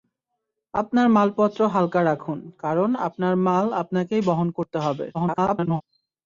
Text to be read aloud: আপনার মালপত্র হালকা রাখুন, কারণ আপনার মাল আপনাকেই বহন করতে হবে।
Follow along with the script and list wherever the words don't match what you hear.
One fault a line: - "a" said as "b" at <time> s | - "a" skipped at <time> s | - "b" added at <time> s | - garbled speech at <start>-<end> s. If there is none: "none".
- garbled speech at 5.1-5.8 s